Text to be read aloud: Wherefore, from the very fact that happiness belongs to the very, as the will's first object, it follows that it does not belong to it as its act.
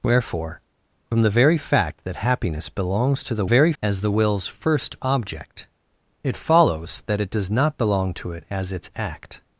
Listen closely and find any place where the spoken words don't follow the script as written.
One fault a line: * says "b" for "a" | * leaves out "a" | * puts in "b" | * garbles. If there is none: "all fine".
all fine